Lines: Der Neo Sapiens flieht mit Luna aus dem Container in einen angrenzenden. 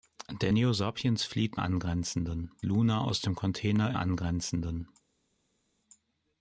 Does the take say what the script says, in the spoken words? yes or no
no